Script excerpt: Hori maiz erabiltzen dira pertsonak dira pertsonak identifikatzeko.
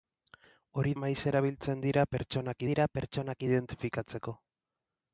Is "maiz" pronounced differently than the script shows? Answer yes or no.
no